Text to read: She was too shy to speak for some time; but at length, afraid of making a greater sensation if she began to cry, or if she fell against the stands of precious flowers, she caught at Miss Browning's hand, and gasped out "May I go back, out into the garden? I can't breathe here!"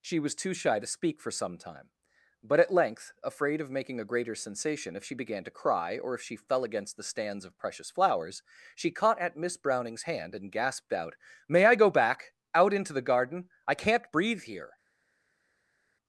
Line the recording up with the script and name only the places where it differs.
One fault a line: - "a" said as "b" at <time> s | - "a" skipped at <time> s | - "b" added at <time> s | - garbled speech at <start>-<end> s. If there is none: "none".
none